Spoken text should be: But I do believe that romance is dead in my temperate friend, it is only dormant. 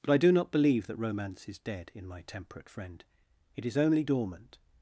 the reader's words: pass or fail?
fail